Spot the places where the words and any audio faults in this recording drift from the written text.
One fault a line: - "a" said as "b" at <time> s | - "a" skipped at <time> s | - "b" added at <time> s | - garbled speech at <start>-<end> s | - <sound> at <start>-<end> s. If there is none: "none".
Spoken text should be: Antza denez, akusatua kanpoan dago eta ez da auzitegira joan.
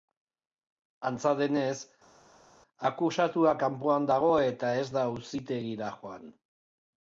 none